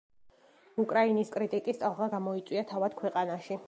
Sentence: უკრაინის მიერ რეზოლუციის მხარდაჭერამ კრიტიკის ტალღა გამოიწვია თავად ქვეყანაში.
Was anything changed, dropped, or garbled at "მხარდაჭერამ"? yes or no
yes